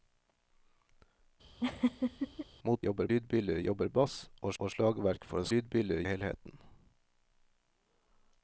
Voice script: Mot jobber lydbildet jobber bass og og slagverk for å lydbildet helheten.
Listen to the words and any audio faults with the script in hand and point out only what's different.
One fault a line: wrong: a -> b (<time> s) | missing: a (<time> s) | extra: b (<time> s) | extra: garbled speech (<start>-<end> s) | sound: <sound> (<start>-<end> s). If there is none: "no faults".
sound: laugh (1.6-2.5 s)